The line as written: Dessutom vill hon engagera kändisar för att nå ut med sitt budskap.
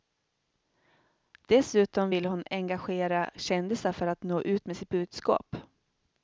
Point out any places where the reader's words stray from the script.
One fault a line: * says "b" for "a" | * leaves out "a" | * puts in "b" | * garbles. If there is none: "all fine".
all fine